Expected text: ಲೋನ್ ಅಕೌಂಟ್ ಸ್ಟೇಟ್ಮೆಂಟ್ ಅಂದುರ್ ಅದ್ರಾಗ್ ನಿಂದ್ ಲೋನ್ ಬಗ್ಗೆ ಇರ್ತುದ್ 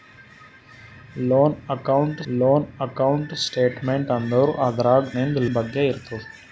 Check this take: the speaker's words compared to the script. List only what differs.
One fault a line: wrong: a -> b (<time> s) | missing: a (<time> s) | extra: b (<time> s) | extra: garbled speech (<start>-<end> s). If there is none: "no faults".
extra: ಲೋನ್ ಅಕೌಂಟ್ (2.3 s)
missing: ಲೋನ್ (5.4 s)